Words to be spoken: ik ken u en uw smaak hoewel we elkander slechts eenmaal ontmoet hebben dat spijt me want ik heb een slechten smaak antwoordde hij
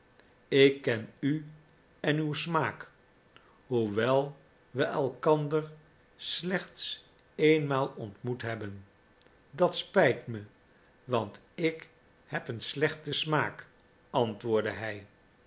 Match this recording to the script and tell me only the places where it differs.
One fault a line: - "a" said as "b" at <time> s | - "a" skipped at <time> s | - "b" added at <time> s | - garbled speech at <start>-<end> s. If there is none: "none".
none